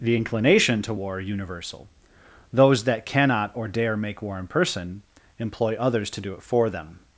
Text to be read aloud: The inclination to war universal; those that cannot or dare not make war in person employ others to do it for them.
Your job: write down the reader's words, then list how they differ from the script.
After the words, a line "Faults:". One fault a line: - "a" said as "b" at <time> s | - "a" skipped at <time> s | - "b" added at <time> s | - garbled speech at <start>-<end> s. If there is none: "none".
The inclination to war universal; those that cannot or dare make war in person employ others to do it for them.
Faults:
- "not" skipped at 4.0 s